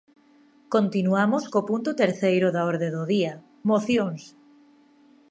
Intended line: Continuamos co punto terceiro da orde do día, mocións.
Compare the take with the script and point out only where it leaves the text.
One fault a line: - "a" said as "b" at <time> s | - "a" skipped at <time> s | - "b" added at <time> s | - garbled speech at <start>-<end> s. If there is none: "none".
none